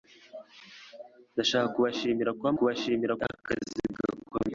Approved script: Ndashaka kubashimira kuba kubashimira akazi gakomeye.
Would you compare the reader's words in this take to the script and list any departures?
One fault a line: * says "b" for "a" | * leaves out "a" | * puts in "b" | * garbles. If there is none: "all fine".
all fine